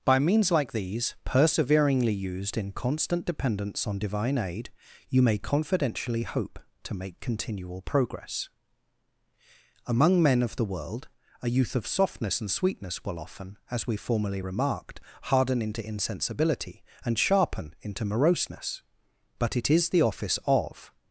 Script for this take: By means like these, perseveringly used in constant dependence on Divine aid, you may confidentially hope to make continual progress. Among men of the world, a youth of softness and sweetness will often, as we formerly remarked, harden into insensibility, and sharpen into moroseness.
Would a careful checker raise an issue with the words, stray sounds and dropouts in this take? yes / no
yes